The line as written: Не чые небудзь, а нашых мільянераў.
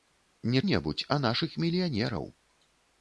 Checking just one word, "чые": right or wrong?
wrong